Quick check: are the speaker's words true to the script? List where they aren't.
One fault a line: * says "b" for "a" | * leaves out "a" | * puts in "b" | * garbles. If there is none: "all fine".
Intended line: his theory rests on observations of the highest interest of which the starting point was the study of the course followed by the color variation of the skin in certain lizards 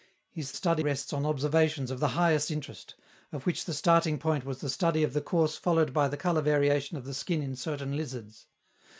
* says "study" for "theory"